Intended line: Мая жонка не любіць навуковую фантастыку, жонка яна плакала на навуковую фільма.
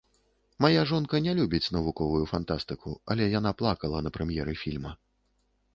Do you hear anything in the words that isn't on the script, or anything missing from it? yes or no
yes